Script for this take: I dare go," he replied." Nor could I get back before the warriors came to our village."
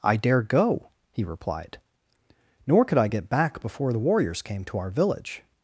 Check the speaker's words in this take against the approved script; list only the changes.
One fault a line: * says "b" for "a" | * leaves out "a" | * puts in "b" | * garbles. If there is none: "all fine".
all fine